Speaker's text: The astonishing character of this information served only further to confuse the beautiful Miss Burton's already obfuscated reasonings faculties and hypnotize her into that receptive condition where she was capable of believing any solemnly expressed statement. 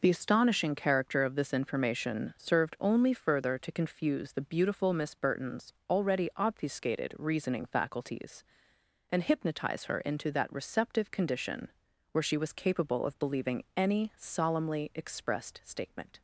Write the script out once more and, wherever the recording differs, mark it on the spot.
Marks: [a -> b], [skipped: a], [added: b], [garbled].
The astonishing character of this information served only further to confuse the beautiful Miss Burton's already obfuscated [reasonings -> reasoning] faculties and hypnotize her into that receptive condition where she was capable of believing any solemnly expressed statement.